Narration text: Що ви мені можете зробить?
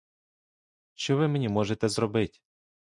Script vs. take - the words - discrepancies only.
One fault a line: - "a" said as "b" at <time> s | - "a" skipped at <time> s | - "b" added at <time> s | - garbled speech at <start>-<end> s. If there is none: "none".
none